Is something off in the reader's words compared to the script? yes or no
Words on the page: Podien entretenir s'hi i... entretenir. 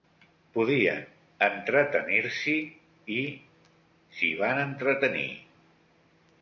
yes